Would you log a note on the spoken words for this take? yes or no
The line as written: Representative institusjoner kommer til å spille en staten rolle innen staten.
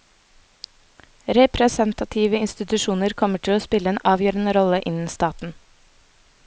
yes